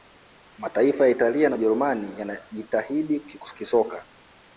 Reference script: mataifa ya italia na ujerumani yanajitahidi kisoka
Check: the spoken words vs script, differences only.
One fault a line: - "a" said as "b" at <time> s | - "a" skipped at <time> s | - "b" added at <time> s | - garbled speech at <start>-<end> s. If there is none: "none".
none